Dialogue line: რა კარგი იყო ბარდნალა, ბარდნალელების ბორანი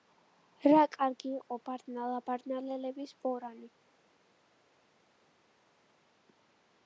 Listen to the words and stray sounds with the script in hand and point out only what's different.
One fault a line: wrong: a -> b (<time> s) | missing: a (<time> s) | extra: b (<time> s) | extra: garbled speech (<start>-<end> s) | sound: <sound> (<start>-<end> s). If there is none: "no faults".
no faults